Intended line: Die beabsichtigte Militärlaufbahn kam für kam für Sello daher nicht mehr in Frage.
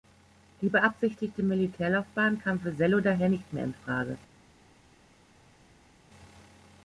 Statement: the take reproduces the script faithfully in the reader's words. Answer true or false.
false